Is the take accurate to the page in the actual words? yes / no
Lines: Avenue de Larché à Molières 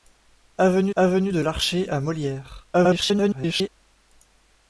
no